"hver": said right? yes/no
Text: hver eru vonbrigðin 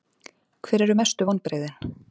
yes